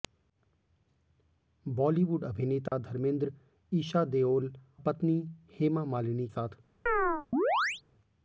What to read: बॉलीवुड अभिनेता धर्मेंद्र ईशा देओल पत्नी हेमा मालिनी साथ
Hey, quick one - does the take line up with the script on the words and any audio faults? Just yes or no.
no